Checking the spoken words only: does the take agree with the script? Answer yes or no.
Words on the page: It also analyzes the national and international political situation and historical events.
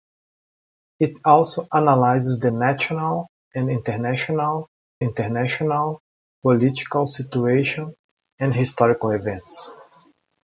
no